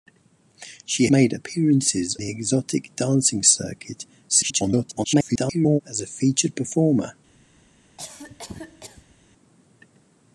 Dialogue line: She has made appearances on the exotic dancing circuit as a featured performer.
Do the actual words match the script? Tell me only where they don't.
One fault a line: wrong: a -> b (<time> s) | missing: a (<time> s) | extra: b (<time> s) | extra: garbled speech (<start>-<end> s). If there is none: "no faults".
missing: has (1.1 s)
missing: on (2.2 s)
extra: garbled speech (4.3-5.8 s)